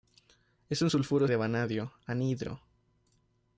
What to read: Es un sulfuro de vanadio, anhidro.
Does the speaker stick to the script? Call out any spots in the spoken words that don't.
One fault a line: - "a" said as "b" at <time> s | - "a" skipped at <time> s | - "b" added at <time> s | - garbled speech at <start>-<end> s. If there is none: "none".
none